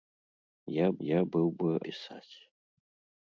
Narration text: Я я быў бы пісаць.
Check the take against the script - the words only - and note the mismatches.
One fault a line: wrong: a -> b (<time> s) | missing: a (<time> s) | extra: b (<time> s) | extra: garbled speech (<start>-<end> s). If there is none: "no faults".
no faults